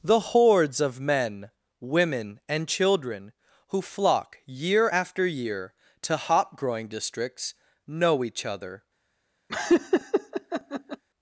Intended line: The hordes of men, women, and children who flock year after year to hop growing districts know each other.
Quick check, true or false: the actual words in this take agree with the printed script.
true